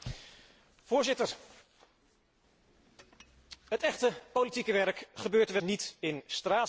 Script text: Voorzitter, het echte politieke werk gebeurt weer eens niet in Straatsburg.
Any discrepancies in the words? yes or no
yes